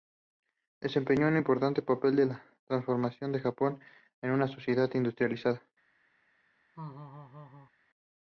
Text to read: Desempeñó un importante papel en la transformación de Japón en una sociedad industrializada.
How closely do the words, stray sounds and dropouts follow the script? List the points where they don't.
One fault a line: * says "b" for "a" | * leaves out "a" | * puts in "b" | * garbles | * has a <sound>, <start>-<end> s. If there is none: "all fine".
* has a laugh, 6.7-7.7 s